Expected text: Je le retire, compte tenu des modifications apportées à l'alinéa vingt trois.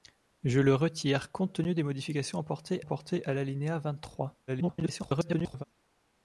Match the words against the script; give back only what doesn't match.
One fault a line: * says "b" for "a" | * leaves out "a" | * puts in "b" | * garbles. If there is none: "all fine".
* puts in "apportées"
* garbles